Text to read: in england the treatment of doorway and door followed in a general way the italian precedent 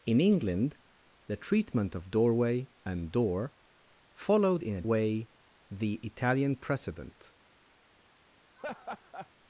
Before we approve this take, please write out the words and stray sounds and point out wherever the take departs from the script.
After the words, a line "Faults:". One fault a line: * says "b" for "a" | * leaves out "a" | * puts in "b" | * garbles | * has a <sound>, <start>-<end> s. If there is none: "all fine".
in england the treatment of doorway and door followed in a way the italian precedent
Faults:
* leaves out "general"
* has a laugh, 8.6-9.3 s